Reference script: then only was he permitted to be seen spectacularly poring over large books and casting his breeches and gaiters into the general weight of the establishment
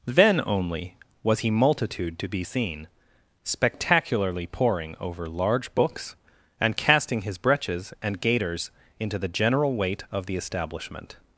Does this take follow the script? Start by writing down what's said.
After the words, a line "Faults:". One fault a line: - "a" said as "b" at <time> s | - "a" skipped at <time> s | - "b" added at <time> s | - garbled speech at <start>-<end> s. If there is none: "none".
then only was he multitude to be seen spectacularly poring over large books and casting his breeches and gaiters into the general weight of the establishment
Faults:
- "permitted" said as "multitude" at 1.5 s